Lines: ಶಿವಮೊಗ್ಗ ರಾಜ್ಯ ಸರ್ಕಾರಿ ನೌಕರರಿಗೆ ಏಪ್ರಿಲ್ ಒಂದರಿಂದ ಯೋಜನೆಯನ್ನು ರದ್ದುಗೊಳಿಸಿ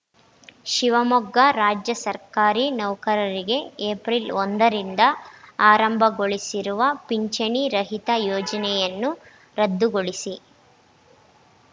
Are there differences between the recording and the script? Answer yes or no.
yes